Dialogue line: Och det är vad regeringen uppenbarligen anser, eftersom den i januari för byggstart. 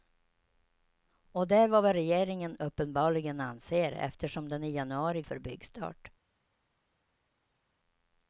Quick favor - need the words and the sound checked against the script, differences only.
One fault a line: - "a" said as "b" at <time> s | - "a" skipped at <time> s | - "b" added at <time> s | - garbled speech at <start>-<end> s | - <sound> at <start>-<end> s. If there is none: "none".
none